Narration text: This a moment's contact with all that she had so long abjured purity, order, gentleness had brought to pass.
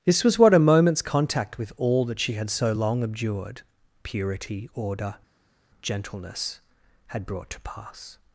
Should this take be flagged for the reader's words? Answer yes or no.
yes